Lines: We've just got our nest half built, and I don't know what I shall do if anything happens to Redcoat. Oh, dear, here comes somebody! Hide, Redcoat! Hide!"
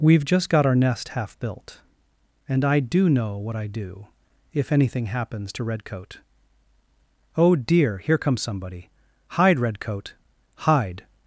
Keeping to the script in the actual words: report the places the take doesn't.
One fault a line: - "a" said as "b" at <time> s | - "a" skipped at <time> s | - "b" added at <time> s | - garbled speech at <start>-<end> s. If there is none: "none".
- "don't" said as "do" at 2.8 s
- "shall" skipped at 3.7 s